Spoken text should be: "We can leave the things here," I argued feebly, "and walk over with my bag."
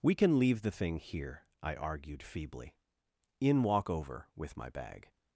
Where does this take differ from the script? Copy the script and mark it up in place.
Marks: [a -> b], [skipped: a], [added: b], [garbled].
"We can leave the [things -> thing] here," I argued feebly, ["and -> in] walk over with my bag."